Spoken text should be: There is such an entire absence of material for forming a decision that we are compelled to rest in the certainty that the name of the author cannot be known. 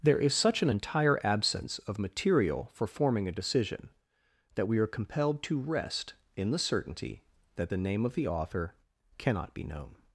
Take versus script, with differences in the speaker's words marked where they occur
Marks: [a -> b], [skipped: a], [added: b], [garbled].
There is such an entire absence of material for forming a decision that we are compelled to rest in the certainty that the name of the author cannot be known.